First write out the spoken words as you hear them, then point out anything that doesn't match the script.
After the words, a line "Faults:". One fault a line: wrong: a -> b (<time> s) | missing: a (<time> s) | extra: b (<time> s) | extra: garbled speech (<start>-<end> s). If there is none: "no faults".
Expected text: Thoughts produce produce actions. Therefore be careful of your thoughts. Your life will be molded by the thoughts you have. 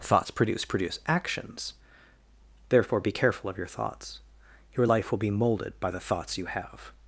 Thoughts produce produce actions. Therefore be careful of your thoughts. Your life will be molded by the thoughts you have.
Faults:
no faults